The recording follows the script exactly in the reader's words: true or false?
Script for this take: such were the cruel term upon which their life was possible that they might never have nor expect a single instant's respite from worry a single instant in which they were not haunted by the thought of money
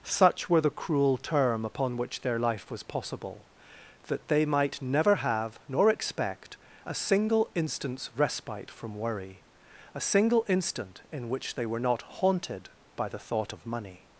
true